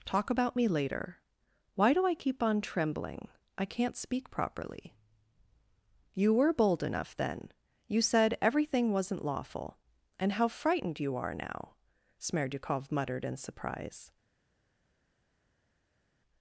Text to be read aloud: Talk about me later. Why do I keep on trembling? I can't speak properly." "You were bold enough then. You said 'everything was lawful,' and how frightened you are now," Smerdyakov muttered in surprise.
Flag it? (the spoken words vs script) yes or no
yes